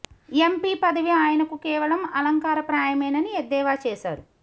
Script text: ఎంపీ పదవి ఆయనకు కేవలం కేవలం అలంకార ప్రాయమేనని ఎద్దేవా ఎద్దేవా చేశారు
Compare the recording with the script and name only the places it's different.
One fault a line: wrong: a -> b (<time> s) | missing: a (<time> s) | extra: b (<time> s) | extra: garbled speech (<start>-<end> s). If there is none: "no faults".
missing: కేవలం (2.0 s)
missing: ఎద్దేవా (3.8 s)